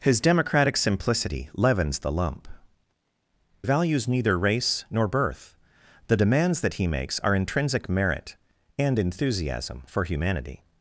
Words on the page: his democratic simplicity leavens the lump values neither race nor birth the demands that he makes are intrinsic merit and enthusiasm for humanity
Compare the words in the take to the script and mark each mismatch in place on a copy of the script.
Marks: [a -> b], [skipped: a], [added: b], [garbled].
his democratic simplicity leavens the lump values neither race nor birth the demands that he makes are intrinsic merit and enthusiasm for humanity